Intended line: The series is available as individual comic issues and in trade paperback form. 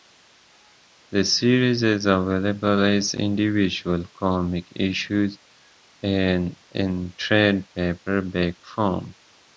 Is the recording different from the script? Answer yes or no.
no